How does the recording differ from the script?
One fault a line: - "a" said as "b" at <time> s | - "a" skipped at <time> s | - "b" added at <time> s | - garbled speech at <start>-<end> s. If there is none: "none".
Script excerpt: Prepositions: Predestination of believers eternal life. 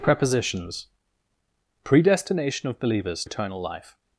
none